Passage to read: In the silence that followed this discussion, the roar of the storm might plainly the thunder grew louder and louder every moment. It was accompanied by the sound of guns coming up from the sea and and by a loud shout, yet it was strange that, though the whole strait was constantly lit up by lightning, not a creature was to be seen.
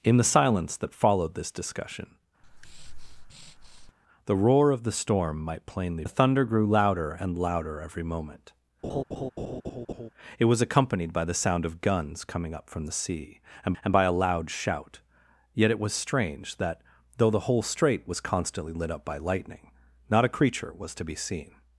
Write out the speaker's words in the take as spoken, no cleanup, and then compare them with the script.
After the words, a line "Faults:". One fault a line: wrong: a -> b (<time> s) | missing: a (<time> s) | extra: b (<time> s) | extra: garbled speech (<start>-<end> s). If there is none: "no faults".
In the silence that followed this discussion, the roar of the storm might plainly the thunder grew louder and louder every moment. It was accompanied by the sound of guns coming up from the sea and and by a loud shout, yet it was strange that, though the whole strait was constantly lit up by lightning, not a creature was to be seen.
Faults:
no faults